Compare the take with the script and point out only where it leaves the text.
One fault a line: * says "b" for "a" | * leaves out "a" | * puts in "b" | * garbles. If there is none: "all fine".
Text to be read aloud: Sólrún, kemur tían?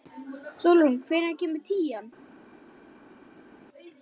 * puts in "hvenær"